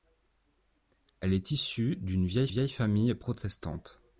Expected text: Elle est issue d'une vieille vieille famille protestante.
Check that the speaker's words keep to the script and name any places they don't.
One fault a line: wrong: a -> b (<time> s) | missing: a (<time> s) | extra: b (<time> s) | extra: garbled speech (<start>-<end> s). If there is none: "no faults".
no faults